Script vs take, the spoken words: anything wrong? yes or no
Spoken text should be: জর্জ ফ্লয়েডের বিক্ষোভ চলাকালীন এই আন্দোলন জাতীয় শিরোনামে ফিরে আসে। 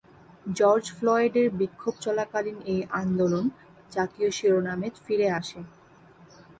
no